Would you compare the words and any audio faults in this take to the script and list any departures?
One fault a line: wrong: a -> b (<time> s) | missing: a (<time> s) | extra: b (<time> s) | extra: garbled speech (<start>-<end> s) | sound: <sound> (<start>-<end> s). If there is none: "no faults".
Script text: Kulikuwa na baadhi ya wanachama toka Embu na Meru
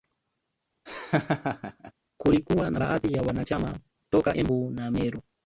sound: laugh (0.9-1.9 s)